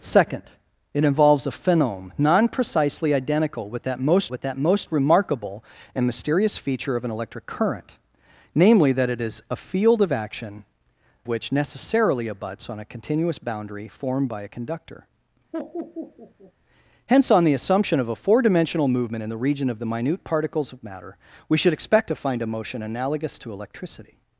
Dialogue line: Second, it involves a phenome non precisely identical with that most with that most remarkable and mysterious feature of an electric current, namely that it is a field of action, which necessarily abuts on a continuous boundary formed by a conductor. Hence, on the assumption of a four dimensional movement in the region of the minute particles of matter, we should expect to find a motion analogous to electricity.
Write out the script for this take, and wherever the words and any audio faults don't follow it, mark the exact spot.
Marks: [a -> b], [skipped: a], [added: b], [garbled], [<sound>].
Second, it involves a phenome non precisely identical with that most with that most remarkable and mysterious feature of an electric current, namely that it is a field of action, which necessarily abuts on a continuous boundary formed by a conductor. [laugh] Hence, on the assumption of a four dimensional movement in the region of the minute particles of matter, we should expect to find a motion analogous to electricity.